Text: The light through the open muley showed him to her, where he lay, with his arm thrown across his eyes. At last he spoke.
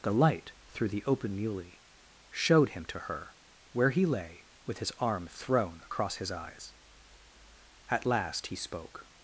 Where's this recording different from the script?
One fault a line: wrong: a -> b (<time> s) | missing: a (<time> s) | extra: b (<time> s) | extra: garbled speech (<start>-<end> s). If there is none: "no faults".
no faults